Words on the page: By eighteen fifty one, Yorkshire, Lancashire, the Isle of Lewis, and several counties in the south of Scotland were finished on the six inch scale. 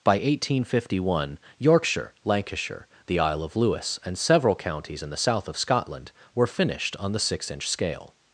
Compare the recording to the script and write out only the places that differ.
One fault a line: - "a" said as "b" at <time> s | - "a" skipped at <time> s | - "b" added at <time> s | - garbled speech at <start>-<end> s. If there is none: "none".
none